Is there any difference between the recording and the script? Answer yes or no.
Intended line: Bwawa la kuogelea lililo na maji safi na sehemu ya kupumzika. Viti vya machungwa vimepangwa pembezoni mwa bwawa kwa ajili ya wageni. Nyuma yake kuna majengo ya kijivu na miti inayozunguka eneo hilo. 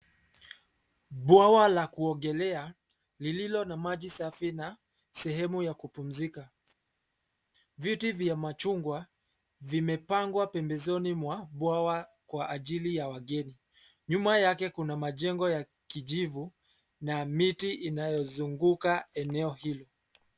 no